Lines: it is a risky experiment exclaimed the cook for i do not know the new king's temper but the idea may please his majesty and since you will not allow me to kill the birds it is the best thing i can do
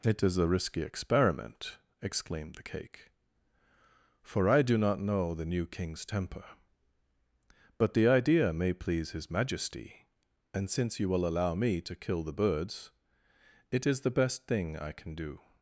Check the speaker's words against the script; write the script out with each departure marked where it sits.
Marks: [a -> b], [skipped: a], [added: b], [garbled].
it is a risky experiment exclaimed the [cook -> cake] for i do not know the new king's temper but the idea may please his majesty and since you will [skipped: not] allow me to kill the birds it is the best thing i can do